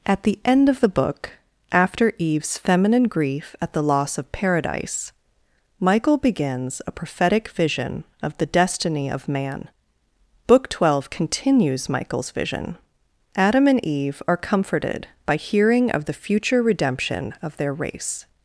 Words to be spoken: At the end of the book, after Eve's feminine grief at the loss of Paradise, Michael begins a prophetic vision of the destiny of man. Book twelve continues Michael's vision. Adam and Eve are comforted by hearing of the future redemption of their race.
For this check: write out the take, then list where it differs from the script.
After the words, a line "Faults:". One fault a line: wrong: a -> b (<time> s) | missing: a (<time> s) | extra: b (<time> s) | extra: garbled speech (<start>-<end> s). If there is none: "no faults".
At the end of the book, after Eve's feminine grief at the loss of Paradise, Michael begins a prophetic vision of the destiny of man. Book twelve continues Michael's vision. Adam and Eve are comforted by hearing of the future redemption of their race.
Faults:
no faults